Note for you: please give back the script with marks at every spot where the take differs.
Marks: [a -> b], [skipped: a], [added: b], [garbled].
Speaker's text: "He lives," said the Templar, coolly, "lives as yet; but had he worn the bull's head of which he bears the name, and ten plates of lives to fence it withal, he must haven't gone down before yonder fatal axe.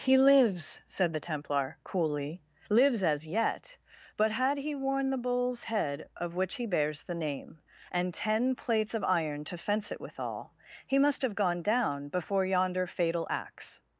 "He lives," said the Templar, coolly, "lives as yet; but had he worn the bull's head of which he bears the name, and ten plates of [lives -> iron] to fence it withal, he must [haven't -> have] gone down before yonder fatal axe.